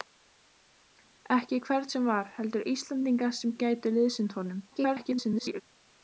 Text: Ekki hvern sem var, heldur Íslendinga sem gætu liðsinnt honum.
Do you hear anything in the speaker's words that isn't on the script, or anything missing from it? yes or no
yes